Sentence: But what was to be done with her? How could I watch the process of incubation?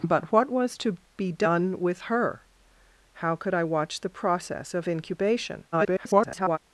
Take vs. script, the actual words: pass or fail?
fail